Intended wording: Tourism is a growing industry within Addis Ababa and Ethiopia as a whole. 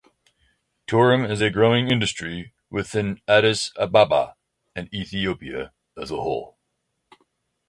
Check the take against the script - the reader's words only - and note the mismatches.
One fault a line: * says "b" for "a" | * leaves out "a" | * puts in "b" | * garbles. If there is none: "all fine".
all fine